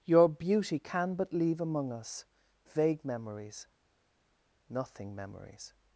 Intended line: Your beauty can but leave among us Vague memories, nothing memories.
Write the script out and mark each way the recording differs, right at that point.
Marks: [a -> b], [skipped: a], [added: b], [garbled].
Your beauty can but leave among us Vague memories, nothing memories.